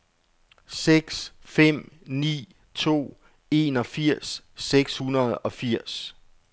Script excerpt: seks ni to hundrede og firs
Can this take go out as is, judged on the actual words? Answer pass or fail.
fail